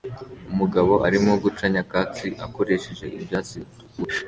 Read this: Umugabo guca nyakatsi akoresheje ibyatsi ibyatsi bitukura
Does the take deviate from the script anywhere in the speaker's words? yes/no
yes